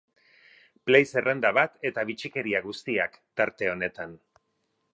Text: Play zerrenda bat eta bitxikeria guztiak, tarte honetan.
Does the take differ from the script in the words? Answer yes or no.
no